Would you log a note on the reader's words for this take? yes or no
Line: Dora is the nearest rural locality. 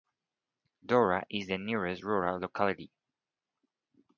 no